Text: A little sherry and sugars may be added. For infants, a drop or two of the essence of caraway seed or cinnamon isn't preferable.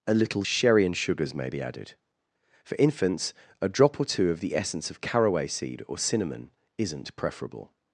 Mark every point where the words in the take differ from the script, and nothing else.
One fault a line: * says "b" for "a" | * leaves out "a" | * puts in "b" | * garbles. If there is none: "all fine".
all fine